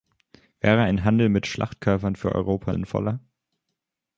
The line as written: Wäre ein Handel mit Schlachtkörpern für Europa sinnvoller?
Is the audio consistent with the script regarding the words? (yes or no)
yes